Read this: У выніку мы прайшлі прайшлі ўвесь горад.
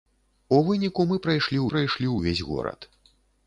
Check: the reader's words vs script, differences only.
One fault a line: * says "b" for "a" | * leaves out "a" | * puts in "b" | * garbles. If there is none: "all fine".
all fine